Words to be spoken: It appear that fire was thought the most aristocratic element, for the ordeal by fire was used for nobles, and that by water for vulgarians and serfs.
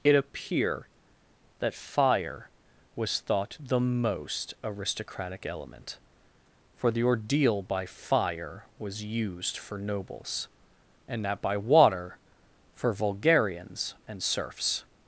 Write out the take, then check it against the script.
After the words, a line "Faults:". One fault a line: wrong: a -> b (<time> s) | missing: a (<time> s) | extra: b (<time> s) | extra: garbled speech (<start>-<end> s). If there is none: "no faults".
It appear that fire was thought the most aristocratic element, for the ordeal by fire was used for nobles, and that by water for vulgarians and serfs.
Faults:
no faults